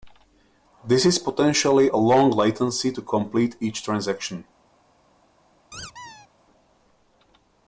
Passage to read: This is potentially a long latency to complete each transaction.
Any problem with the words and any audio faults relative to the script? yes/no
yes